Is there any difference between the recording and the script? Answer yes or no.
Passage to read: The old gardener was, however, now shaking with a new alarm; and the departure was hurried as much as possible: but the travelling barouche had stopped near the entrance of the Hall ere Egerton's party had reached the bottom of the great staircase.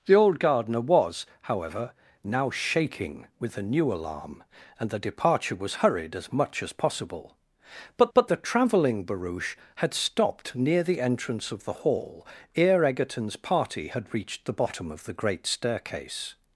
yes